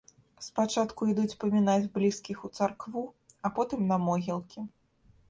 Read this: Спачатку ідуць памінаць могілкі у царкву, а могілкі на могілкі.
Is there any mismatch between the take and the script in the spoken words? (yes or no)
yes